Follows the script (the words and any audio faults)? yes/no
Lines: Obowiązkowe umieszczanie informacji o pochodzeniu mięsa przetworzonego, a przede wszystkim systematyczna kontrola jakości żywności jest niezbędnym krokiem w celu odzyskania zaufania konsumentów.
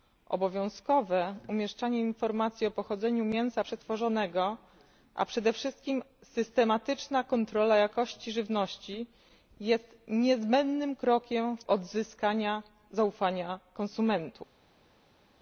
no